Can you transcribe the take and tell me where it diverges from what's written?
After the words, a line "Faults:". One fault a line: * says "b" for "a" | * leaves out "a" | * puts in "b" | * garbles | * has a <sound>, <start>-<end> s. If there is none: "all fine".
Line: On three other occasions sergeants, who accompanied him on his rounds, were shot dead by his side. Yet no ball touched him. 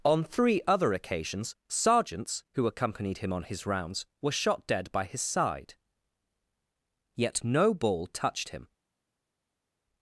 On three other occasions sergeants, who accompanied him on his rounds, were shot dead by his side. Yet no ball touched him.
Faults:
all fine